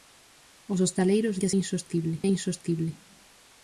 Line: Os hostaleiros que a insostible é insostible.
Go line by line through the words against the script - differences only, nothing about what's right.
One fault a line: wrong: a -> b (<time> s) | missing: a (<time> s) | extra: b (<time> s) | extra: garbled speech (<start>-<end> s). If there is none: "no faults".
no faults